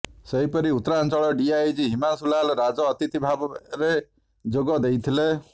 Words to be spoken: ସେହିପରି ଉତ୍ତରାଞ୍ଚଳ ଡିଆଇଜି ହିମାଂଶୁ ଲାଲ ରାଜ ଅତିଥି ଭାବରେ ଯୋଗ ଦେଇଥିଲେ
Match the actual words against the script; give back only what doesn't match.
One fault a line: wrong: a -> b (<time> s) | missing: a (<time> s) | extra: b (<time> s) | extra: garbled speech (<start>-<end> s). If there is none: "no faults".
no faults